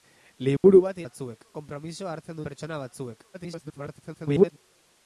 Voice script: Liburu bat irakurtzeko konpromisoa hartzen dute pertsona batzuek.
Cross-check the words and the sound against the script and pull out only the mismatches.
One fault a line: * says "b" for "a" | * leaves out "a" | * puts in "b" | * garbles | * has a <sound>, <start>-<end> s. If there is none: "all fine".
* has a dropout, 0.6-0.6 s
* says "batzuek" for "irakurtzeko"
* leaves out "dute"
* garbles